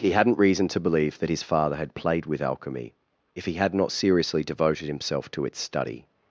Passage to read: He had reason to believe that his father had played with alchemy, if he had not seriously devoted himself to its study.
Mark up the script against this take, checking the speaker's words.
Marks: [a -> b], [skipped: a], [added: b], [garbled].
He [had -> hadn't] reason to believe that his father had played with alchemy, if he had not seriously devoted himself to its study.